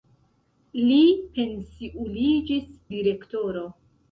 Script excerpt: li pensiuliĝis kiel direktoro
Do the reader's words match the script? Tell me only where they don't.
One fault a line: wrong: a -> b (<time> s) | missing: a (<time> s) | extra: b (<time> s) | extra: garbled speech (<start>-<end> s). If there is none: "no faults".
missing: kiel (2.7 s)